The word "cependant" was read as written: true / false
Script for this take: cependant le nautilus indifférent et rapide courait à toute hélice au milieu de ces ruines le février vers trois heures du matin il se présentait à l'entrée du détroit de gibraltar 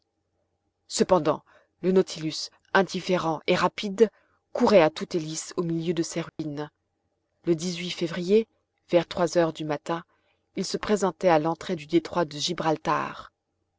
true